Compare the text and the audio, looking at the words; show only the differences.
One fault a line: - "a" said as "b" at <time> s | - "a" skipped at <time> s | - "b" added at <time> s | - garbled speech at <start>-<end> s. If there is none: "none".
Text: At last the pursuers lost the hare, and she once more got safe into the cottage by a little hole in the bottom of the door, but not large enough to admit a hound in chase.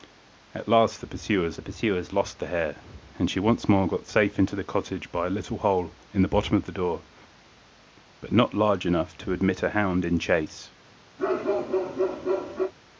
- "pursuers" added at 1.6 s